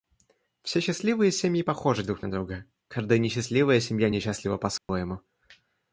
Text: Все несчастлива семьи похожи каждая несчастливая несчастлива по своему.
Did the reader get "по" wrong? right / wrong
right